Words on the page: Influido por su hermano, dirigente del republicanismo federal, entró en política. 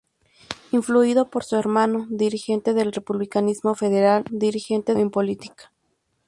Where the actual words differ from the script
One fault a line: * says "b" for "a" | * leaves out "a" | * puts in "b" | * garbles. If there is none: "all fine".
* says "dirigente" for "entró"